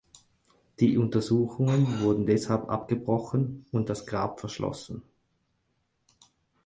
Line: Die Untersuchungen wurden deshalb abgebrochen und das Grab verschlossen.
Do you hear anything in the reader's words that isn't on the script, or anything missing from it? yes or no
no